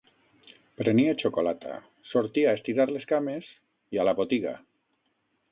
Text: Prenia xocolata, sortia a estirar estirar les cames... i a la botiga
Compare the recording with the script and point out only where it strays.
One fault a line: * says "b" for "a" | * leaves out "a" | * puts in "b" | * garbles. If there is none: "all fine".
* leaves out "estirar"